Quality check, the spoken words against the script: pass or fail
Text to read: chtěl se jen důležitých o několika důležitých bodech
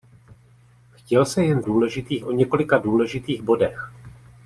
pass